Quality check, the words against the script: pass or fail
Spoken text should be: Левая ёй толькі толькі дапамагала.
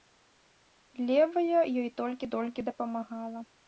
pass